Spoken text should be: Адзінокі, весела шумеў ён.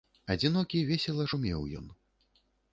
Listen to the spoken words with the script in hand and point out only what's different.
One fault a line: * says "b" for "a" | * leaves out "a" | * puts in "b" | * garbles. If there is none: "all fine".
all fine